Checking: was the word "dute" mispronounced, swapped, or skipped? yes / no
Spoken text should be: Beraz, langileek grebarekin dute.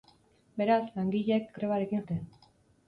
no